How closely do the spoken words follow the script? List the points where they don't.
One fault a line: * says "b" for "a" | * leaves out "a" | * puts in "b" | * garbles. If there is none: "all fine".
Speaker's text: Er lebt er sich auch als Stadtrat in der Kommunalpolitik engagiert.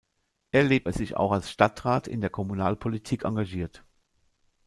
all fine